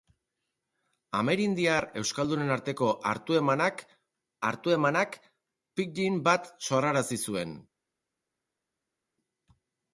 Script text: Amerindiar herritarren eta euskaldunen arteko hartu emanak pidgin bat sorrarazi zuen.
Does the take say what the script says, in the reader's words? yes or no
no